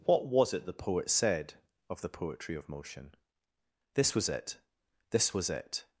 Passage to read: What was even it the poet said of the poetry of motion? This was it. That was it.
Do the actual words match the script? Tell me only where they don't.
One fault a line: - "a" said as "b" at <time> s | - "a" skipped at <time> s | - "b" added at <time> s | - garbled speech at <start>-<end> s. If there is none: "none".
- "even" skipped at 0.5 s
- "That" said as "This" at 5.1 s